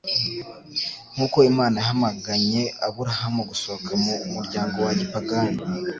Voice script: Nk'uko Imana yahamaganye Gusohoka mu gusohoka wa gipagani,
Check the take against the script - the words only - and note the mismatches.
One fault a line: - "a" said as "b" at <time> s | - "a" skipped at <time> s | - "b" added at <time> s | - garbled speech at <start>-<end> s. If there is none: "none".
- "Aburahamu" added at 2.9 s
- "gusohoka" said as "muryango" at 4.3 s